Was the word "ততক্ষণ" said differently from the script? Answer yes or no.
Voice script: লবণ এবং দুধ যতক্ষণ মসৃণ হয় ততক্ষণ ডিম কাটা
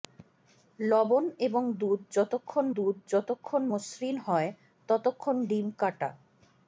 no